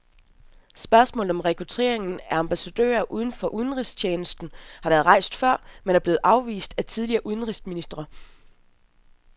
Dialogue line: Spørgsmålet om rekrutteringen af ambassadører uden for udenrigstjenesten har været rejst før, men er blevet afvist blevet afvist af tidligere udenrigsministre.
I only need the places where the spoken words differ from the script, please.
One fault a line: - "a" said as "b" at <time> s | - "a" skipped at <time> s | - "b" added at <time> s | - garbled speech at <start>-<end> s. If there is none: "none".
- "blevet afvist" skipped at 6.7 s